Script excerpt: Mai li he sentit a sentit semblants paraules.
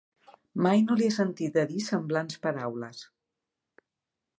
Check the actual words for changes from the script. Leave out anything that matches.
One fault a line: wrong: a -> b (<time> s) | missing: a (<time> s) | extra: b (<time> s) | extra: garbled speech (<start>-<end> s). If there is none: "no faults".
extra: no (0.8 s)
wrong: sentit -> dir (1.7 s)